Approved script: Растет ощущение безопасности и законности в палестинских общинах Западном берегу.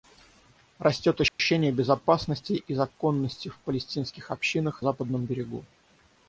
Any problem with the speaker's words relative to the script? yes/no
no